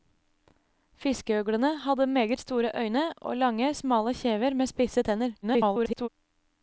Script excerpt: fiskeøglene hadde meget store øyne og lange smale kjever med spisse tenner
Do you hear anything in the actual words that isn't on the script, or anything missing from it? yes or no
yes